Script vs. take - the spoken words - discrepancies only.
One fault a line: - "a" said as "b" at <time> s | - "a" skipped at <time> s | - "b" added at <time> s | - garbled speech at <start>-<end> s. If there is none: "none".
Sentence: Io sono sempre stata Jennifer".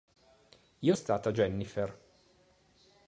- "sono sempre" skipped at 0.9 s